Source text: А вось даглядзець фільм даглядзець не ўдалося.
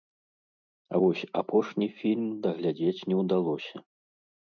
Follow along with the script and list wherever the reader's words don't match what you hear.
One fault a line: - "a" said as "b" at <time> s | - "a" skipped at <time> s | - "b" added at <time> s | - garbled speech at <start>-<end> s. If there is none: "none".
- "даглядзець" said as "апошні" at 1.4 s